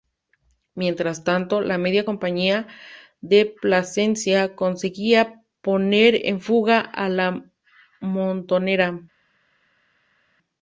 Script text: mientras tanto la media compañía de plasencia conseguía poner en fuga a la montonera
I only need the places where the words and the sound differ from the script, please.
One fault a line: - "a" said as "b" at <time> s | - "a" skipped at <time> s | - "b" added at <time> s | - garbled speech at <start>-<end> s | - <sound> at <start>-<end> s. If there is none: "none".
none